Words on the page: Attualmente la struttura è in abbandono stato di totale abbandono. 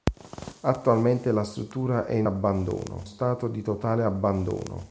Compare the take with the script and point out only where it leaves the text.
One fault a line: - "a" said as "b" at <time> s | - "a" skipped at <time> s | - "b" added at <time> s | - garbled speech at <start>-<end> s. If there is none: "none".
none